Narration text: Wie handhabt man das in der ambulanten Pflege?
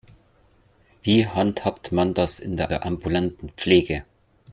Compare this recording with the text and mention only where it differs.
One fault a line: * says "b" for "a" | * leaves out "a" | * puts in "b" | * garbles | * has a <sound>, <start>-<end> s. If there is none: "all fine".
* puts in "der"